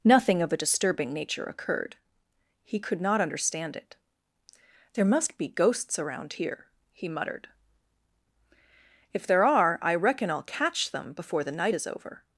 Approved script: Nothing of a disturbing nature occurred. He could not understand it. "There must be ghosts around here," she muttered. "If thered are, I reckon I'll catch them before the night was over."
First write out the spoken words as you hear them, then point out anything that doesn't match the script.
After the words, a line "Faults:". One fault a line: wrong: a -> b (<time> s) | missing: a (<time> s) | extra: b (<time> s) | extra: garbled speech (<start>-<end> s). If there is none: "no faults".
Nothing of a disturbing nature occurred. He could not understand it. "There must be ghosts around here," he muttered. "If there are, I reckon I'll catch them before the night is over."
Faults:
wrong: she -> he (6.9 s)
wrong: thered -> there (9.3 s)
wrong: was -> is (11.7 s)